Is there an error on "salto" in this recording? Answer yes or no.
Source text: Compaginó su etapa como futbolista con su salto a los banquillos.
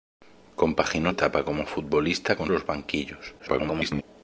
yes